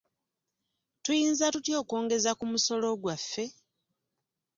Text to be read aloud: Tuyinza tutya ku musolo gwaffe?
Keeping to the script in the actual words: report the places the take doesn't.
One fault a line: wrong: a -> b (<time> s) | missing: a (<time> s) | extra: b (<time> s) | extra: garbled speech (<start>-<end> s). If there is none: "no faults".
extra: okwongeza (1.8 s)